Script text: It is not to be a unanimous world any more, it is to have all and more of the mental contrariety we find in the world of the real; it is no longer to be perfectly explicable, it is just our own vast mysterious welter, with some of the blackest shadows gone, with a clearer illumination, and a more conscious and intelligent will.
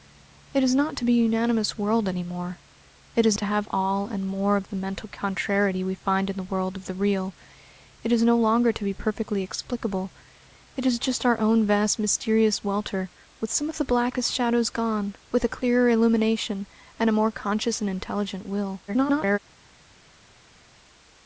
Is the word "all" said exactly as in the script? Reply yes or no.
yes